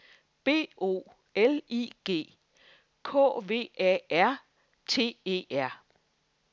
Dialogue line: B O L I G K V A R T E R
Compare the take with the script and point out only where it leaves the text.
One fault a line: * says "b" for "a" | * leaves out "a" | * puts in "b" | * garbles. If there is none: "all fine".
all fine